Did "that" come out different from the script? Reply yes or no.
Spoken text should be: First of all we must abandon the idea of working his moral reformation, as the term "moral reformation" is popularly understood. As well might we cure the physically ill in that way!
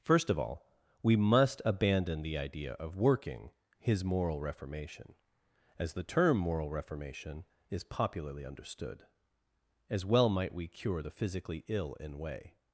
yes